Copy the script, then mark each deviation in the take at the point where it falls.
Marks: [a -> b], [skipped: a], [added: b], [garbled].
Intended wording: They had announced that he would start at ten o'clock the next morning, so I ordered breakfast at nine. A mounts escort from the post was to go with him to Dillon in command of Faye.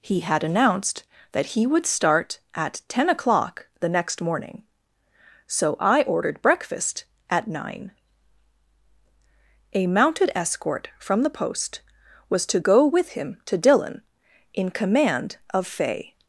[They -> He] had announced that he would start at ten o'clock the next morning, so I ordered breakfast at nine. A [mounts -> mounted] escort from the post was to go with him to Dillon in command of Faye.